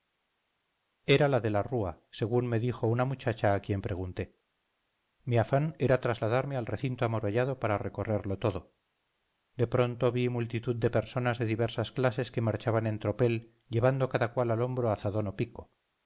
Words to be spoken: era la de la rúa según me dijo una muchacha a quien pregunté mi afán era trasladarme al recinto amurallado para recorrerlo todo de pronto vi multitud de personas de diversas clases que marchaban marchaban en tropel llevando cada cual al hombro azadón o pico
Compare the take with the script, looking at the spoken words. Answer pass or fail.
fail